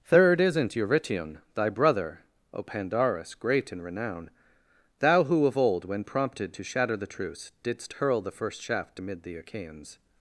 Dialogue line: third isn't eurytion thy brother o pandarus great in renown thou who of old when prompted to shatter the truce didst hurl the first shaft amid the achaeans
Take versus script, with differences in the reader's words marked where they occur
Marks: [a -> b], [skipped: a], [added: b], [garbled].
third isn't eurytion thy brother o pandarus great in renown thou who of old when prompted to shatter the truce didst hurl the first shaft amid the achaeans